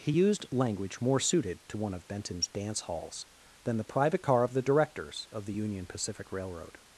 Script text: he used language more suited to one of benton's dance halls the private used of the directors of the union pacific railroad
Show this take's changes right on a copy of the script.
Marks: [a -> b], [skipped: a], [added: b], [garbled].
he used language more suited to one of benton's dance halls [added: than] the private [used -> car] of the directors of the union pacific railroad